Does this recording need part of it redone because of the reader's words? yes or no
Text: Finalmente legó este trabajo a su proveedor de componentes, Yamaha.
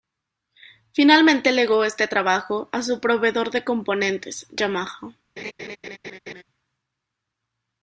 no